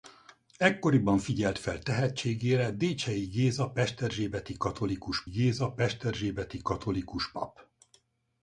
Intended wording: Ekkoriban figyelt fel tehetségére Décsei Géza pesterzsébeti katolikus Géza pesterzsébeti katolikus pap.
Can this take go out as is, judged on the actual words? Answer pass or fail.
pass